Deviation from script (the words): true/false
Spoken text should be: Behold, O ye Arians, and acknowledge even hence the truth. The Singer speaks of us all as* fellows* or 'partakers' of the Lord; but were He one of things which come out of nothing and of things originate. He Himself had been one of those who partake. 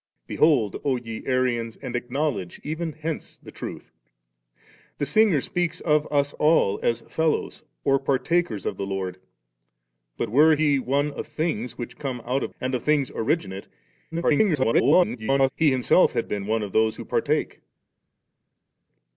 true